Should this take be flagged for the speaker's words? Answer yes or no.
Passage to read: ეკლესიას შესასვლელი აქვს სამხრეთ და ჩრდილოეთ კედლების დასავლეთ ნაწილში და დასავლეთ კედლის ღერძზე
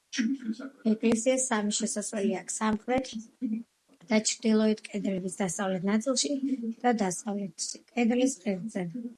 yes